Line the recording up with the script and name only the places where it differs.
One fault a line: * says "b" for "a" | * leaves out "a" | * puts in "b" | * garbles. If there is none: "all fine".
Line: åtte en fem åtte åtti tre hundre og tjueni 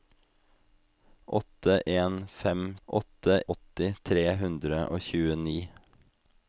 all fine